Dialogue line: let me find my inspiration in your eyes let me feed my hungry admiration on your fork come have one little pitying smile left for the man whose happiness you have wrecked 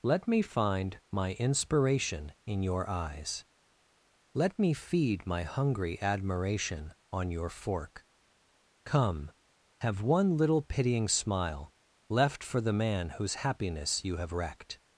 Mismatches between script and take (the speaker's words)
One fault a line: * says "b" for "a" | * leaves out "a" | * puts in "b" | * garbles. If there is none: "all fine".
all fine